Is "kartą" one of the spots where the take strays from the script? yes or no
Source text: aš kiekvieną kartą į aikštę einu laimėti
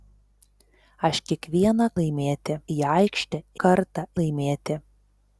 yes